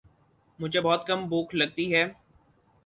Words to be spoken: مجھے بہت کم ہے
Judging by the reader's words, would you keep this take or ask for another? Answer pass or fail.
fail